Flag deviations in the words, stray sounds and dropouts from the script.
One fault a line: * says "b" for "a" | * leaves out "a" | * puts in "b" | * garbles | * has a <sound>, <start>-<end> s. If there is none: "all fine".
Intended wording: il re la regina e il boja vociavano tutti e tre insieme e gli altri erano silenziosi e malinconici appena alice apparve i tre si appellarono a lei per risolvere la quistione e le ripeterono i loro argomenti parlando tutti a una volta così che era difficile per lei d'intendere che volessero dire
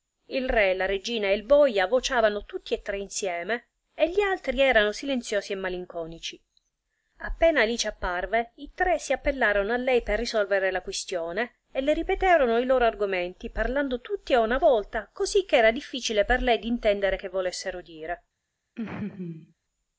* has a laugh, 18.8-19.5 s